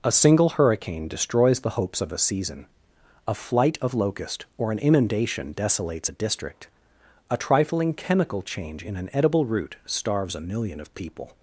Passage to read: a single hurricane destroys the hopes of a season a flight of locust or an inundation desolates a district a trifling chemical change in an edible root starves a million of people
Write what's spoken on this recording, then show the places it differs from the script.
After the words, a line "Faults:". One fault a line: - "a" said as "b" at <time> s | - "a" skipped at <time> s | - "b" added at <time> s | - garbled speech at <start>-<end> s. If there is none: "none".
a single hurricane destroys the hopes of a season a flight of locust or an inundation desolates a district a trifling chemical change in an edible root starves a million of people
Faults:
none